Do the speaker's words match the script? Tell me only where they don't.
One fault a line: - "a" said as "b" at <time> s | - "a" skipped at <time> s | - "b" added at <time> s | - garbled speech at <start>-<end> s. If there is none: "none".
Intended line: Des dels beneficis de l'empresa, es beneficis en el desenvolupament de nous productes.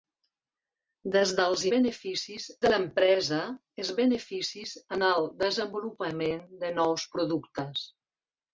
none